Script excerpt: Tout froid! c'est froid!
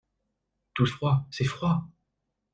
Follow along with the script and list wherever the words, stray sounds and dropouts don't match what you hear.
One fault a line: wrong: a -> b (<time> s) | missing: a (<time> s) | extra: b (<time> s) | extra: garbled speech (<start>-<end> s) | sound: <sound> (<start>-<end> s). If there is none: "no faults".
no faults